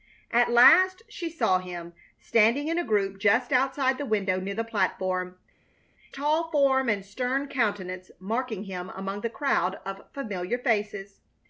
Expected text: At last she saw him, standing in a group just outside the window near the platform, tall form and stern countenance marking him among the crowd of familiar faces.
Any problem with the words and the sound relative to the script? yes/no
no